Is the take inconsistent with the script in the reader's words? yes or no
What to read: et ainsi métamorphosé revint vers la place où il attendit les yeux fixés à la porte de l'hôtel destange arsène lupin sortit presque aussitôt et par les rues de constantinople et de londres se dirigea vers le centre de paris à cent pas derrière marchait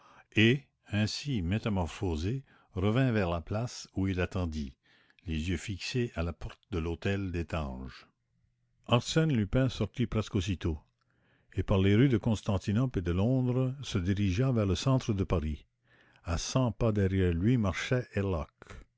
yes